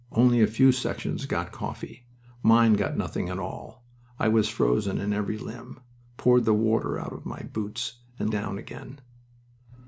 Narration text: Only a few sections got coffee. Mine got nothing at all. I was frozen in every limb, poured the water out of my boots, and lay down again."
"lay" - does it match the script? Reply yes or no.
no